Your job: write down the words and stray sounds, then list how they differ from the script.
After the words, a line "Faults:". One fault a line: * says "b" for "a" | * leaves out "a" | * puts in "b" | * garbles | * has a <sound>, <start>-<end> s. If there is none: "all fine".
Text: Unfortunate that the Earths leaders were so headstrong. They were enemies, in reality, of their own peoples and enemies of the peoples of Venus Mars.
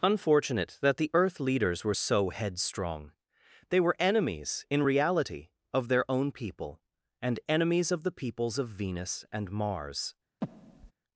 Unfortunate that the Earth leaders were so headstrong. They were enemies, in reality, of their own people and enemies of the peoples of Venus and Mars.
Faults:
* says "Earth" for "Earths"
* says "people" for "peoples"
* puts in "and"
* has a breath, 10.4-10.9 s